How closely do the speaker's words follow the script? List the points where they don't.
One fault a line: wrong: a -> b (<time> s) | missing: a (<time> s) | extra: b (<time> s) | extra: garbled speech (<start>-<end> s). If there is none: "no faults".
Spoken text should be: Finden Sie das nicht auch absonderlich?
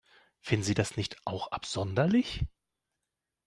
no faults